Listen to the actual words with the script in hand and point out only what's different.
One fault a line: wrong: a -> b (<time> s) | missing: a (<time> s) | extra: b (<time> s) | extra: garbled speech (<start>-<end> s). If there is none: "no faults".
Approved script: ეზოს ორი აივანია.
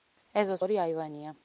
no faults